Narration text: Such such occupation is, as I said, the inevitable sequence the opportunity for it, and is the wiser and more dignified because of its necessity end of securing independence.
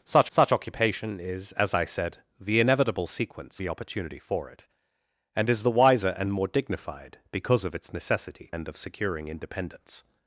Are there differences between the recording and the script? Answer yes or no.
no